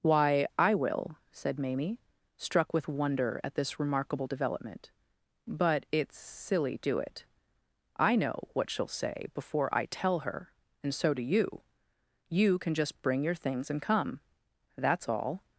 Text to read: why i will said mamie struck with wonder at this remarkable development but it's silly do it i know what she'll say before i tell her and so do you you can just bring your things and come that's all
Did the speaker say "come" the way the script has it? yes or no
yes